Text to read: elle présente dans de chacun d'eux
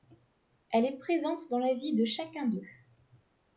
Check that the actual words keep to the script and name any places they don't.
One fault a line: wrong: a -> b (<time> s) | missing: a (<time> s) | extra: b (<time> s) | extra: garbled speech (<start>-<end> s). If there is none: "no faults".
extra: est (0.8 s)
extra: la vie (1.6 s)